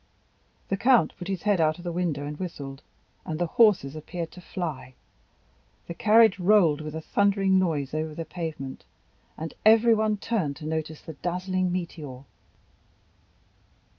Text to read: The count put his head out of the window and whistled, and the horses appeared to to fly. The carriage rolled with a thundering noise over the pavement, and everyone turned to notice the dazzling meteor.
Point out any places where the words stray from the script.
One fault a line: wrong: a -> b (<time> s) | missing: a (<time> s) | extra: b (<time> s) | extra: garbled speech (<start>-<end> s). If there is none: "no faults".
missing: to (4.4 s)